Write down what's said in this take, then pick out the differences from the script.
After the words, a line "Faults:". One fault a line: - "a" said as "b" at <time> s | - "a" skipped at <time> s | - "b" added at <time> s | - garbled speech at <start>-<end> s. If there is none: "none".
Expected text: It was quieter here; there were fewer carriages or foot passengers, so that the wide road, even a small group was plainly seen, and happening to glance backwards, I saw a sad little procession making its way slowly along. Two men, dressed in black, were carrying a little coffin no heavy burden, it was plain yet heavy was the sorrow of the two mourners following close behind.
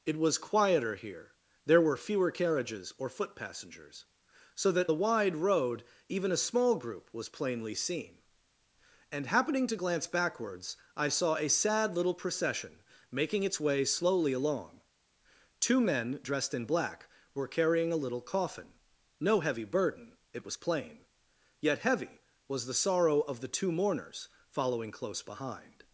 It was quieter here; there were fewer carriages or foot passengers, so that the wide road, even a small group was plainly seen, and happening to glance backwards, I saw a sad little procession making its way slowly along. Two men, dressed in black, were carrying a little coffin no heavy burden, it was plain yet heavy was the sorrow of the two mourners following close behind.
Faults:
none